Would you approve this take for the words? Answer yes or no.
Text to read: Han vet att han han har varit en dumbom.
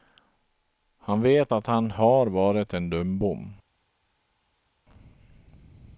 no